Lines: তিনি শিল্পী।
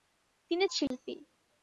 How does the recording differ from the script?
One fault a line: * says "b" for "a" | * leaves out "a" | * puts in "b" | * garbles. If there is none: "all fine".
all fine